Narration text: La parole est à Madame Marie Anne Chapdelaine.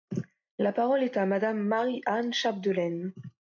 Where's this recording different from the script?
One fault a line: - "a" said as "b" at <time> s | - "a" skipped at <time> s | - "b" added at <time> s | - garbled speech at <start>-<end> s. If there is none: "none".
none